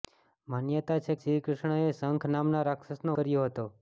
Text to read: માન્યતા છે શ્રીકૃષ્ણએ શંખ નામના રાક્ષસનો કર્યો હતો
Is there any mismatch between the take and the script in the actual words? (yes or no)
no